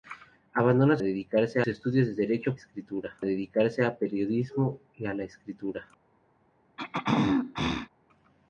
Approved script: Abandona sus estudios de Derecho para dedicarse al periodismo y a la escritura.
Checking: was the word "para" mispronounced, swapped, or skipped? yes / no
yes